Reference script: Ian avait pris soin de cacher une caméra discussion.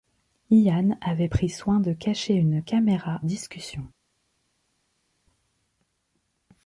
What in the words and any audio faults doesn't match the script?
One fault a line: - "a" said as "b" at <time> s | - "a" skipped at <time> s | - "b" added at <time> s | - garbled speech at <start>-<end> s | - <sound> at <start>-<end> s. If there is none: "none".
none